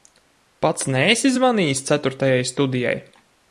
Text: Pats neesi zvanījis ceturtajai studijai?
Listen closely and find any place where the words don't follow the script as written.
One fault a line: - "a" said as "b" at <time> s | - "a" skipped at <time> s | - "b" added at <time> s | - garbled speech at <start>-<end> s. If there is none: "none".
none